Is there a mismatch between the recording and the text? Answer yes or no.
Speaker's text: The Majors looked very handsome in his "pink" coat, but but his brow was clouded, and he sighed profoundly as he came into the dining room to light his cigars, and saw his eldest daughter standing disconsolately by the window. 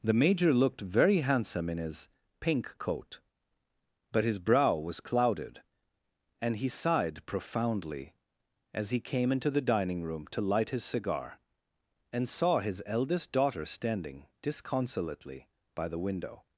yes